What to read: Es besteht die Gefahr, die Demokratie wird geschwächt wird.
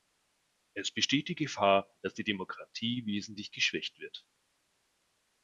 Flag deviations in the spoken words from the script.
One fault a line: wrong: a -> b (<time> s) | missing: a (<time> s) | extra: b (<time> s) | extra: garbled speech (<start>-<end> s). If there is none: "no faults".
extra: dass (2.0 s)
wrong: wird -> wesentlich (3.0 s)